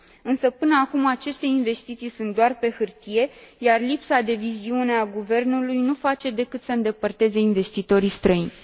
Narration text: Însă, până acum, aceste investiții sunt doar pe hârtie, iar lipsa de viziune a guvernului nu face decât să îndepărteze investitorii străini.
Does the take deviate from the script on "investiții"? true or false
false